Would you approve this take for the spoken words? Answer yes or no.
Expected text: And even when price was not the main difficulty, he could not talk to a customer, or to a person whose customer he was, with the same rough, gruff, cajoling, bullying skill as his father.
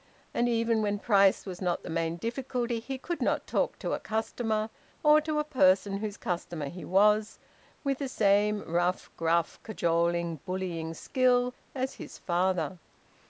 yes